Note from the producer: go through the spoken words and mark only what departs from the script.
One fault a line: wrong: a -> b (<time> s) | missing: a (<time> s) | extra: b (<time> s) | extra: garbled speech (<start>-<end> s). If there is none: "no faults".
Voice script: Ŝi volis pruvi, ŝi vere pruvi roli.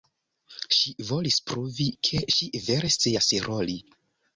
extra: ke (2.1 s)
wrong: pruvi -> scias (3.0 s)